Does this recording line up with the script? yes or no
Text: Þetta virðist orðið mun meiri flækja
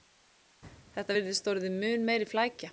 yes